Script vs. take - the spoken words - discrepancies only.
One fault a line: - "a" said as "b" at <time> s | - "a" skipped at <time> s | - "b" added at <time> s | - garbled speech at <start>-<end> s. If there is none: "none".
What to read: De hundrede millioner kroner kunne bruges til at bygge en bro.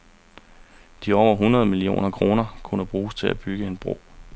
- "over" added at 1.1 s